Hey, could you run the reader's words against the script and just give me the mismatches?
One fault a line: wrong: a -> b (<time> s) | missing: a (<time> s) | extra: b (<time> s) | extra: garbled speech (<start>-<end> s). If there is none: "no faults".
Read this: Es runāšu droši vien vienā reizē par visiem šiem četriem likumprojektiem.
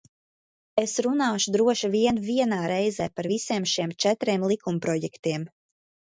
no faults